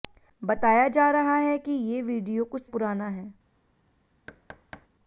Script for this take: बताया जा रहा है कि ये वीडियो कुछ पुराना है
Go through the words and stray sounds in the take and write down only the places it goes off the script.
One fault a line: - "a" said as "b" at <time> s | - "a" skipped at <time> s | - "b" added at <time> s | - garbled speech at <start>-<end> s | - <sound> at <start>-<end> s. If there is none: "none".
- thud at 4.3-4.9 s